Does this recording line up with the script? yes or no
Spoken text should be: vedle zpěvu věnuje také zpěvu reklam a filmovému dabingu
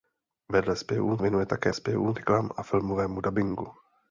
yes